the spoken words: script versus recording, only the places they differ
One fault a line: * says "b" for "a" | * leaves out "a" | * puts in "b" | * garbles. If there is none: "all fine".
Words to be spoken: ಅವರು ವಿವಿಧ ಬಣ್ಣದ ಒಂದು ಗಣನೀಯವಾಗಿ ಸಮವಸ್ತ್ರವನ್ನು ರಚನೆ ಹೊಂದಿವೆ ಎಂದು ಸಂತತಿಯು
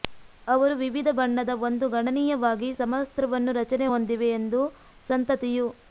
all fine